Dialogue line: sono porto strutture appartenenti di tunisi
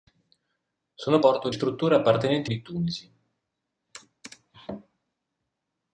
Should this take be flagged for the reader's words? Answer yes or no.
no